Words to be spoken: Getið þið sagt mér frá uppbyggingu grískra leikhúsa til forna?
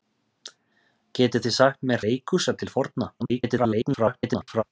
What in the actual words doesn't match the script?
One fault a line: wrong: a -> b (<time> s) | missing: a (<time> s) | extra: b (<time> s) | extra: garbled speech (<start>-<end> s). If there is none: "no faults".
missing: frá uppbyggingu grískra (2.1 s)
extra: garbled speech (3.2-4.6 s)